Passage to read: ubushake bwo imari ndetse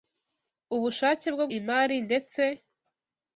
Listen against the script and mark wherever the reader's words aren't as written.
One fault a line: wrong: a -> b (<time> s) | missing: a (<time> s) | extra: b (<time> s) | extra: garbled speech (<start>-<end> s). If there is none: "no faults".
no faults